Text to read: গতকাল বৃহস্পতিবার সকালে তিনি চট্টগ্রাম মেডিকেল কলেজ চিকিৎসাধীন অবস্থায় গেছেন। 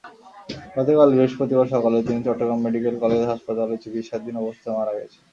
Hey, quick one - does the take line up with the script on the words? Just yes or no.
no